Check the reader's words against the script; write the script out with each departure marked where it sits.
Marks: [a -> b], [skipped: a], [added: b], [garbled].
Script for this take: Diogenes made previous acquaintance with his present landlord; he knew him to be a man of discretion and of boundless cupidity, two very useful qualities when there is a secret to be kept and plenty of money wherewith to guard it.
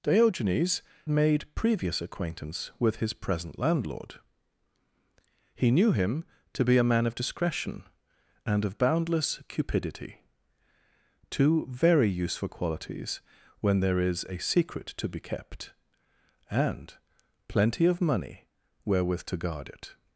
Diogenes made previous acquaintance with his present landlord; he knew him to be a man of discretion and of boundless cupidity, two very useful qualities when there is a secret to be kept and plenty of money wherewith to guard it.